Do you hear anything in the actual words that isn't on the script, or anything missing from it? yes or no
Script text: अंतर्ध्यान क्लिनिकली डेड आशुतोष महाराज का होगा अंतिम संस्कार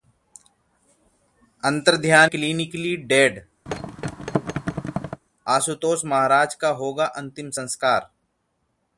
no